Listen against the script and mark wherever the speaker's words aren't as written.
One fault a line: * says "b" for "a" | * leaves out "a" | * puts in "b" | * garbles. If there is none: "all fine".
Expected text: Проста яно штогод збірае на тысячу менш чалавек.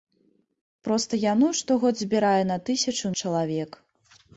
* leaves out "менш"